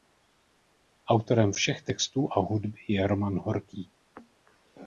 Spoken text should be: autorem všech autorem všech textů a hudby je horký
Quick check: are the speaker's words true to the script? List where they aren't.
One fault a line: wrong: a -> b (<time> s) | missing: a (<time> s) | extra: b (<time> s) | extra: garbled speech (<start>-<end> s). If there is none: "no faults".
missing: autorem všech (1.8 s)
extra: roman (3.1 s)